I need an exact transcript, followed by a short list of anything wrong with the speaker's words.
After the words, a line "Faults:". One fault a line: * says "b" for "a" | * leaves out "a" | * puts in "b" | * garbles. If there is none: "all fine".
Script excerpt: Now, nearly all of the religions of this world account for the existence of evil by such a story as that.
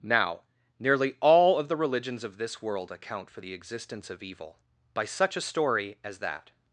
Now, nearly all of the religions of this world account for the existence of evil by such a story as that.
Faults:
all fine